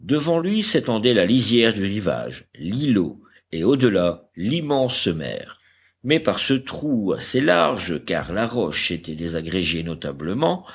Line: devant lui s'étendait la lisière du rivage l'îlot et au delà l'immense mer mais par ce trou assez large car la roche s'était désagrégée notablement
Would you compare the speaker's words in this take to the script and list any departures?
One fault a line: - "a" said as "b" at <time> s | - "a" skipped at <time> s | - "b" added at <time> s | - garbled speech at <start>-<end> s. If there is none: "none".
none